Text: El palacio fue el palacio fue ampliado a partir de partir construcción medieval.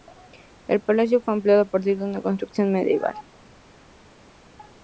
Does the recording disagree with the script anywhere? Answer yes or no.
yes